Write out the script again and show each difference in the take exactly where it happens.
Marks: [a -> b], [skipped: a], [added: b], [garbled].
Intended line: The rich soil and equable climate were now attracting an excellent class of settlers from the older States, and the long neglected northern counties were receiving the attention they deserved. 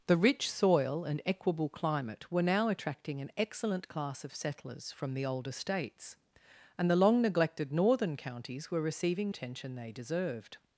The rich soil and equable climate were now attracting an excellent class of settlers from the older States, and the long neglected northern counties were receiving [skipped: the] attention they deserved.